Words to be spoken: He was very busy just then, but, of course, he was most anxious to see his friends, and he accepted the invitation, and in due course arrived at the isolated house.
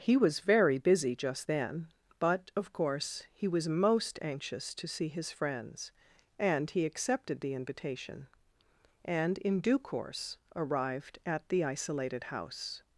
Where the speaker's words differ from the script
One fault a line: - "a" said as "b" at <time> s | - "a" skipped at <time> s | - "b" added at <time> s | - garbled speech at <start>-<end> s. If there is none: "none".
none